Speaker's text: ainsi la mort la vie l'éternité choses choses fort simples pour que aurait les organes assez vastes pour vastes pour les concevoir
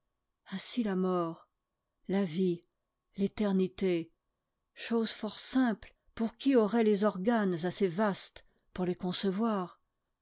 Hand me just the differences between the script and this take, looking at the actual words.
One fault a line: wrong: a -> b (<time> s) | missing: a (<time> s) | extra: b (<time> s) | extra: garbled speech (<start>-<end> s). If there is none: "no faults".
missing: choses (5.1 s)
wrong: que -> qui (6.4 s)
missing: vastes pour (8.8 s)